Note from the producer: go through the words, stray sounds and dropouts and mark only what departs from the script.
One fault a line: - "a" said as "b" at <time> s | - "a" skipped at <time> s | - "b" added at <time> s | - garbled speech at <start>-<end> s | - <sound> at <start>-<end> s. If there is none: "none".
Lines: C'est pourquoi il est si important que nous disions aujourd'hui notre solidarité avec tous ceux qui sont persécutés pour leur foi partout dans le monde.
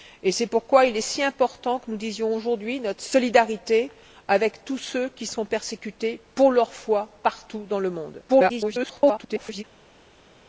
- garbled speech at 8.3-9.6 s